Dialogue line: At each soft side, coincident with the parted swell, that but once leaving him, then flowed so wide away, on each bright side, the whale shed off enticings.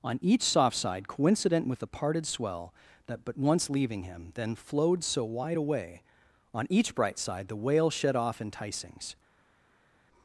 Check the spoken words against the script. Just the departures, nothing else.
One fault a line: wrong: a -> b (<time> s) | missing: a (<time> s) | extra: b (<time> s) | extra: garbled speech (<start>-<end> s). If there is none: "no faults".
wrong: At -> On (0.0 s)